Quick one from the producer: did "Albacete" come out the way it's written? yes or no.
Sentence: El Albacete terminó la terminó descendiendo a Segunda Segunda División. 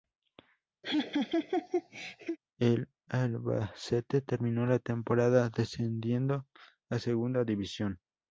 yes